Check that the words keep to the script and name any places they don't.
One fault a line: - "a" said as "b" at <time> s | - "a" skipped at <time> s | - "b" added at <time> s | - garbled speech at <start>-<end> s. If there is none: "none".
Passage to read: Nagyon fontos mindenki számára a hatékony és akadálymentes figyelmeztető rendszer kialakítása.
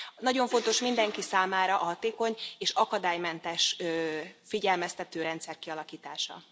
none